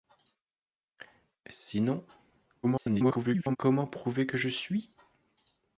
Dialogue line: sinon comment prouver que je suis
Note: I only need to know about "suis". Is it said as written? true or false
true